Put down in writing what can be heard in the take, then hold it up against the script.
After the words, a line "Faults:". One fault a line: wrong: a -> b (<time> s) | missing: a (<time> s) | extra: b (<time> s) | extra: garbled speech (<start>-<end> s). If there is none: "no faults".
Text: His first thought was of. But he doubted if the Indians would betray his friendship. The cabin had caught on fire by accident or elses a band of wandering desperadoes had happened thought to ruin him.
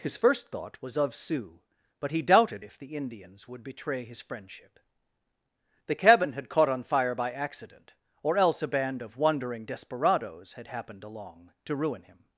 His first thought was of Sioux. But he doubted if the Indians would betray his friendship. The cabin had caught on fire by accident or else a band of wandering desperadoes had happened along to ruin him.
Faults:
extra: Sioux (1.1 s)
wrong: elses -> else (8.4 s)
wrong: thought -> along (11.0 s)